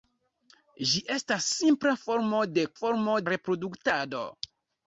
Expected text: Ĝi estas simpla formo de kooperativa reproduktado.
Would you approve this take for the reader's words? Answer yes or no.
no